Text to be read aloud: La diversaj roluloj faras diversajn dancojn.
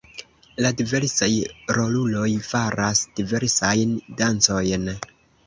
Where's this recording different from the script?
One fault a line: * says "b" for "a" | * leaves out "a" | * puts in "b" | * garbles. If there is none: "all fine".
all fine